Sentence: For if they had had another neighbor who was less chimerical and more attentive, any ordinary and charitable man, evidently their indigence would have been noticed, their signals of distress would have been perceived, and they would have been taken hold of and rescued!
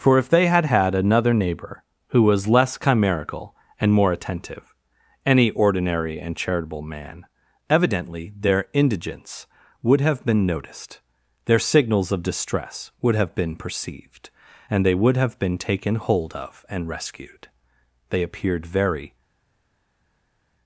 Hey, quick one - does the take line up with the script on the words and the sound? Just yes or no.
no